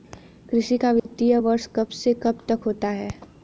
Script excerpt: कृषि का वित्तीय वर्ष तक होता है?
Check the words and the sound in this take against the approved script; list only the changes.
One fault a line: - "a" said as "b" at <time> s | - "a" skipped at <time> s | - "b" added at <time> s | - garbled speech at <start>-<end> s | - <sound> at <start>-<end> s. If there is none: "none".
- dropout at 1.0-1.1 s
- "कब से कब" added at 1.8 s